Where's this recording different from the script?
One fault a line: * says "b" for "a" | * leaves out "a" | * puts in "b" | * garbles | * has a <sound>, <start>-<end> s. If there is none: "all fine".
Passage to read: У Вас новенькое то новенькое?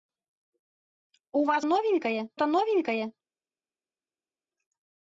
all fine